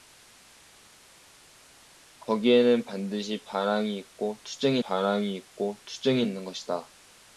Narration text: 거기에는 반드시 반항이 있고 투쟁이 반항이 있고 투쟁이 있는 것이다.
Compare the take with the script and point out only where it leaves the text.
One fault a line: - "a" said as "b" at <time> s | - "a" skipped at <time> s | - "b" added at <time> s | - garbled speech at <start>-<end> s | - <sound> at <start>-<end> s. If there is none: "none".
none